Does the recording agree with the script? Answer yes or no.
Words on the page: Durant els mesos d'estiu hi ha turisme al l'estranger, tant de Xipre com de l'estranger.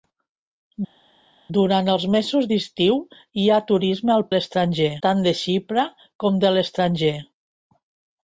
yes